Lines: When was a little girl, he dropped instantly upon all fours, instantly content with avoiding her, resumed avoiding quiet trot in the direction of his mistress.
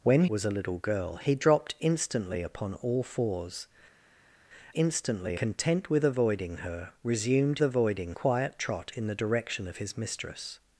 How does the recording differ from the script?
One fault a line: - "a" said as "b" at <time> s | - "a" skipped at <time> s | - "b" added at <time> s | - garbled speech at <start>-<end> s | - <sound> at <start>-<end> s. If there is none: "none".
none